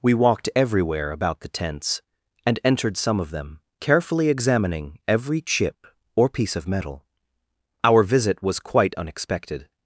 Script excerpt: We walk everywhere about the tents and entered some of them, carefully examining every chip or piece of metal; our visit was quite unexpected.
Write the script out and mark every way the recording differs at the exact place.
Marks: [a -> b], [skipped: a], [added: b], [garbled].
We [walk -> walked] everywhere about the tents and entered some of them, carefully examining every chip or piece of metal; our visit was quite unexpected.